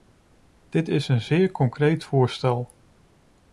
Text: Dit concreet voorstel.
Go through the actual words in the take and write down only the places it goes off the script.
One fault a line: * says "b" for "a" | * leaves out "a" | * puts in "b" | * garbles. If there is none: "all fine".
* puts in "is een zeer"